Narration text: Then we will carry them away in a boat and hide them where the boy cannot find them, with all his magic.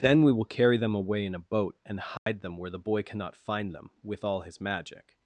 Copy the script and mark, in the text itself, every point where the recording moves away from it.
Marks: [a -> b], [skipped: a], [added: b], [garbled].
Then we will carry them away in a boat and hide them where the boy cannot find them, with all his magic.